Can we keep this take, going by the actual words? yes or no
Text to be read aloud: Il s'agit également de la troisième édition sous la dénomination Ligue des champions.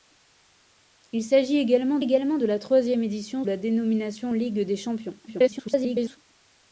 no